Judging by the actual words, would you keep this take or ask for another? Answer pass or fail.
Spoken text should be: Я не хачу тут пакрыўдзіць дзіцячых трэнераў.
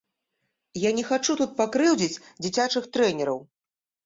pass